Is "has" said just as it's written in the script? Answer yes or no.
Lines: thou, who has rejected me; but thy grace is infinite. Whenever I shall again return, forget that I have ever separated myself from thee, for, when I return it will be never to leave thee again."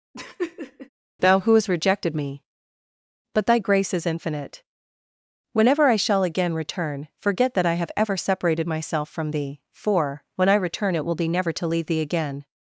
no